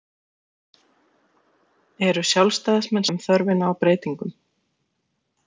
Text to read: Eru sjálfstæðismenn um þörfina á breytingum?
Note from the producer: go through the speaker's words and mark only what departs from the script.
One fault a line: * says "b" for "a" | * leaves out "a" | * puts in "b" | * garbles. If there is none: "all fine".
all fine